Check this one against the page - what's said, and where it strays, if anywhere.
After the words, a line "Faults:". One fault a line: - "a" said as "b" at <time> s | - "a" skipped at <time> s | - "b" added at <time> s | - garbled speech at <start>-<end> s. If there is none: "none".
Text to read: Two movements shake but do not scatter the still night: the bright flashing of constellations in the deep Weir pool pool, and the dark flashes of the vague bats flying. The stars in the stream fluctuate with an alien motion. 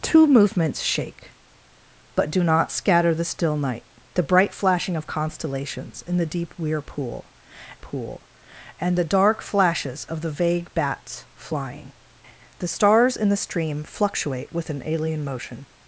Two movements shake but do not scatter the still night: the bright flashing of constellations in the deep Weir pool pool, and the dark flashes of the vague bats flying. The stars in the stream fluctuate with an alien motion.
Faults:
none